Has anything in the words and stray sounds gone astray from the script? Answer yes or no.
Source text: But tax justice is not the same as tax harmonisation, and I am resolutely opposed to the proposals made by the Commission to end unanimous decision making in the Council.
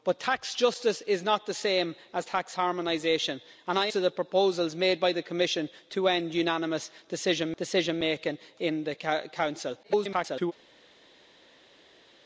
yes